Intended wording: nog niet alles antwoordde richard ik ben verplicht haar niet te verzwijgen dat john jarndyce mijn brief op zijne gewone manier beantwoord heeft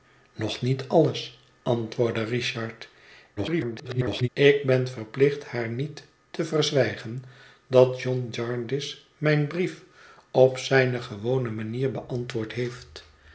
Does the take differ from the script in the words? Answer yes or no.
yes